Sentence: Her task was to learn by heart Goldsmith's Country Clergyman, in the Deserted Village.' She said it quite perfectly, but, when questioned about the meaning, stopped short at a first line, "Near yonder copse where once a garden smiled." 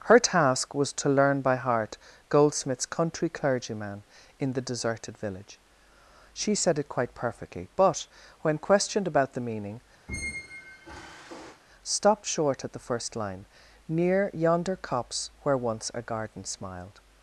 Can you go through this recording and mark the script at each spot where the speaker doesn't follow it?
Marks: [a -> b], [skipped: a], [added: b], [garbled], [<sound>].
Her task was to learn by heart Goldsmith's Country Clergyman, in the Deserted Village.' She said it quite perfectly, but, when questioned about the meaning, [squeak] stopped short at [a -> the] first line, "Near yonder copse where once a garden smiled."